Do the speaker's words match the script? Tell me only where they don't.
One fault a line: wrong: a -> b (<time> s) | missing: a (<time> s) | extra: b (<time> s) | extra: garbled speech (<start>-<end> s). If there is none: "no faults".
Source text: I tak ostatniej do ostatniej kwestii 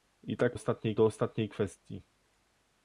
no faults